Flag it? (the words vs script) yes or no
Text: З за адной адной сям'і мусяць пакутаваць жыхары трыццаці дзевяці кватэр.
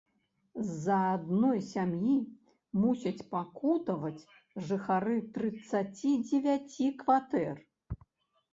yes